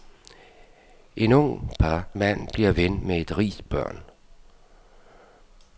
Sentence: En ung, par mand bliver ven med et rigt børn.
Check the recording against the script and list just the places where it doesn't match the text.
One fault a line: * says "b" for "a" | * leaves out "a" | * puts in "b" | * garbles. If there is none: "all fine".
all fine